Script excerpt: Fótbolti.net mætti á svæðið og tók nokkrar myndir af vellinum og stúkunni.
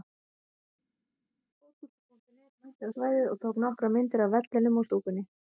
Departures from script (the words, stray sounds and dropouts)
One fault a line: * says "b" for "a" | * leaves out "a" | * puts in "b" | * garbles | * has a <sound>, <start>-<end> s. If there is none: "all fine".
all fine